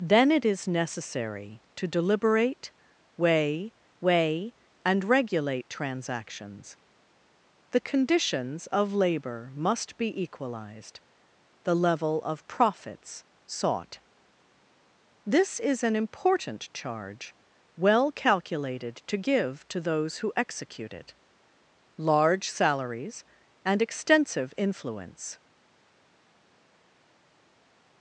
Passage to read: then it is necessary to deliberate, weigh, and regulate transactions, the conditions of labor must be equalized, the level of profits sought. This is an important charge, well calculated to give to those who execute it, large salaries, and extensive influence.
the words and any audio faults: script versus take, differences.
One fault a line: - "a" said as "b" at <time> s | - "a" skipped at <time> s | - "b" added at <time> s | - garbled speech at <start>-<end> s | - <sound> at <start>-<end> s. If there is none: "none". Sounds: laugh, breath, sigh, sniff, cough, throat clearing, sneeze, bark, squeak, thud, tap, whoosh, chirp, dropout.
- "weigh" added at 4.0 s